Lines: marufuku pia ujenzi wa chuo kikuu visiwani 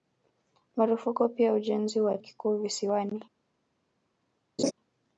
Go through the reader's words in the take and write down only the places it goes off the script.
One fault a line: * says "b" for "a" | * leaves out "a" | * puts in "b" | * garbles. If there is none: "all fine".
* leaves out "chuo"